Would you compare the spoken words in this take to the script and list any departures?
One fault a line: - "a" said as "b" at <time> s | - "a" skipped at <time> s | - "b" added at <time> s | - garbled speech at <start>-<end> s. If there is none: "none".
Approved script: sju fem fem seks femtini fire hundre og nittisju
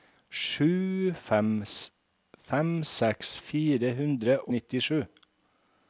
- "femtini" skipped at 3.3 s
- "og" skipped at 4.4 s